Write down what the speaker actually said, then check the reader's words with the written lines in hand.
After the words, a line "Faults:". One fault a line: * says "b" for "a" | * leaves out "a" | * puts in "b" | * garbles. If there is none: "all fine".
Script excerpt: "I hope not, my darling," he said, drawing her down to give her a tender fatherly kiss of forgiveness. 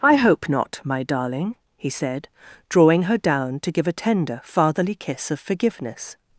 "I hope not, my darling," he said, drawing her down to give a tender fatherly kiss of forgiveness.
Faults:
* leaves out "her"